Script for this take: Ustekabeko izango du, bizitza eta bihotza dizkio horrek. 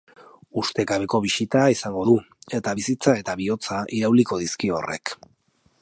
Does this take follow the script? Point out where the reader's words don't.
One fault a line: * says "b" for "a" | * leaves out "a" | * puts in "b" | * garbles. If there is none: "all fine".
* puts in "bisita"
* puts in "eta"
* puts in "irauliko"